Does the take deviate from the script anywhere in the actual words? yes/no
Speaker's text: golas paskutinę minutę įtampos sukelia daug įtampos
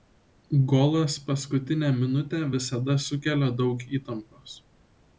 yes